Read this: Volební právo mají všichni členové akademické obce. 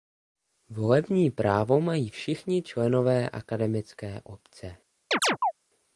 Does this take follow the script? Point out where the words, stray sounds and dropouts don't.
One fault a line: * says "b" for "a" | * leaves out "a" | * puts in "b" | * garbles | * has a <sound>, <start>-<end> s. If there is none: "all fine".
* has a chirp, 5.1-5.5 s